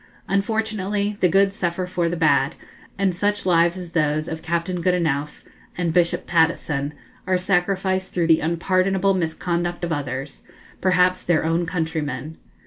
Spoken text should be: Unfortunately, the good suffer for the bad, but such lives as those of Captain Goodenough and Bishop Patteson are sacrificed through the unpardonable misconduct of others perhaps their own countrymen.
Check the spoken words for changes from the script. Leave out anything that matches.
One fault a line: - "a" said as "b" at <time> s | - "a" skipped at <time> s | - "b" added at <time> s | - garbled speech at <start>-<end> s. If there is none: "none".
- "but" said as "and" at 3.0 s